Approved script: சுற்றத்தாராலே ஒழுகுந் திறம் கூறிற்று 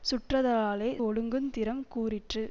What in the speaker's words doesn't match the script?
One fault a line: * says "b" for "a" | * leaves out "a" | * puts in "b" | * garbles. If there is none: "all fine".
all fine